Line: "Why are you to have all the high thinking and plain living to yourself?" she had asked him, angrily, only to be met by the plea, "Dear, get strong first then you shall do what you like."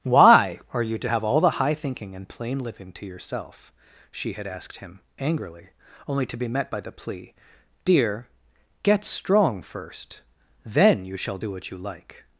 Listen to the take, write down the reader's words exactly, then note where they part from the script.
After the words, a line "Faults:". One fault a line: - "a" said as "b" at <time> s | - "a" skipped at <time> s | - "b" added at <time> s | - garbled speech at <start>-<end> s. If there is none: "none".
"Why are you to have all the high thinking and plain living to yourself?" she had asked him, angrily, only to be met by the plea, "Dear, get strong first then you shall do what you like."
Faults:
none